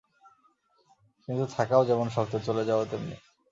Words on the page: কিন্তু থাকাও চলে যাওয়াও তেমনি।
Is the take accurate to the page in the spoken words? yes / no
no